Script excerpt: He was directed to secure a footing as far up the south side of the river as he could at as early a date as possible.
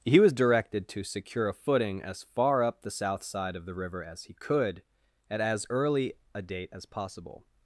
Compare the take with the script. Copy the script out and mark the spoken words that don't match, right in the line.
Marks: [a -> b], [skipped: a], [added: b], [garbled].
He was directed to secure a footing as far up the south side of the river as he could at as early a date as possible.